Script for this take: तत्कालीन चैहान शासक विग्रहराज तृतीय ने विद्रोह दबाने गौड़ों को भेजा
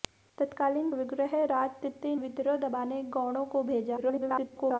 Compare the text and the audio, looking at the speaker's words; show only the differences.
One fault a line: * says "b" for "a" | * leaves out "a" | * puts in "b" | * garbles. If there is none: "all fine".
* leaves out "चैहान शासक"
* leaves out "ने"
* garbles